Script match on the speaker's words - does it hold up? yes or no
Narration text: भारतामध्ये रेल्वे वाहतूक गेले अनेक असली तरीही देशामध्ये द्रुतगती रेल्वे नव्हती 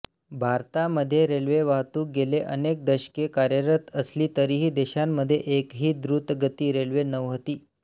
no